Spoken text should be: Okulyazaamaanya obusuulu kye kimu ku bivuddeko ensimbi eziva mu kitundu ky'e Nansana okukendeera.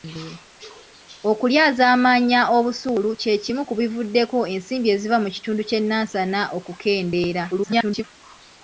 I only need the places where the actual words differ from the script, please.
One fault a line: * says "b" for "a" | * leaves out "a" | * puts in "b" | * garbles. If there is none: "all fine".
* garbles